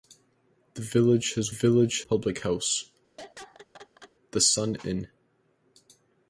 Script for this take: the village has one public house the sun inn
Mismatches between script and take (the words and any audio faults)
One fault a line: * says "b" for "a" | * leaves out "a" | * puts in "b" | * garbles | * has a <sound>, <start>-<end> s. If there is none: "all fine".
* says "village" for "one"
* has a laugh, 3.2-4.1 s